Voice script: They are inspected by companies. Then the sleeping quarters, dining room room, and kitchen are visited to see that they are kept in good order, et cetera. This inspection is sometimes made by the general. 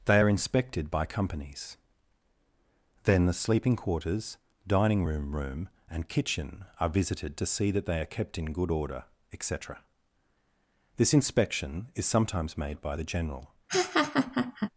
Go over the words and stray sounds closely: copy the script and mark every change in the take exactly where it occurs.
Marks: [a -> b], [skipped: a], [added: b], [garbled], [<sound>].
They are inspected by companies. Then the sleeping quarters, dining room room, and kitchen are visited to see that they are kept in good order, et cetera. This inspection is sometimes made by the general. [laugh]